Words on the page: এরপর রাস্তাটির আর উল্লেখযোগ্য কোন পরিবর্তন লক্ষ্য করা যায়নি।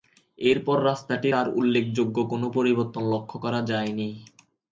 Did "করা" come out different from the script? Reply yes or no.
no